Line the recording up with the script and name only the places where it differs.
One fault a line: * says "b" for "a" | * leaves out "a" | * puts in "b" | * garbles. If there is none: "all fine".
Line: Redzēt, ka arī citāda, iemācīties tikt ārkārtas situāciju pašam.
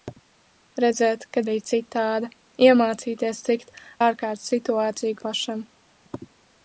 all fine